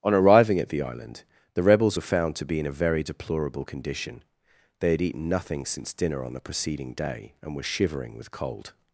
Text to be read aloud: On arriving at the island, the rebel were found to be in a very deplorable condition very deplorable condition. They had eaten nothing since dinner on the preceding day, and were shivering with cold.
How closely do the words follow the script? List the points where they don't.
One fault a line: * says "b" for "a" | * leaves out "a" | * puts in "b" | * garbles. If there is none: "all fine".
* says "rebels" for "rebel"
* leaves out "very deplorable condition"